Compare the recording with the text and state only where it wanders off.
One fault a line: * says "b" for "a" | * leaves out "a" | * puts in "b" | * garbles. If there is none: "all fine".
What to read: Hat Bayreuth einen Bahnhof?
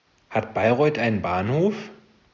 all fine